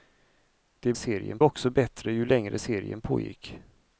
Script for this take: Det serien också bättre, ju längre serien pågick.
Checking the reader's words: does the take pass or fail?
pass